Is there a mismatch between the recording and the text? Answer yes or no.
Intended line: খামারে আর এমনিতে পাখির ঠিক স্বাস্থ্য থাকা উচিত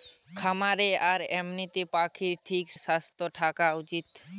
no